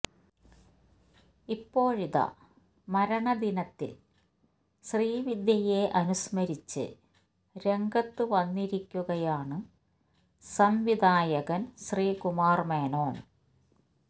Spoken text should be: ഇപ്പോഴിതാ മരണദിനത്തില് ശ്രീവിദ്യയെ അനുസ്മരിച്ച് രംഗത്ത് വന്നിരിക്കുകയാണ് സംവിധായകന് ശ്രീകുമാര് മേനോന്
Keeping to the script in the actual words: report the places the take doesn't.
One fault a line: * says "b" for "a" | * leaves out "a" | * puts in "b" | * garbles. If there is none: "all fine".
all fine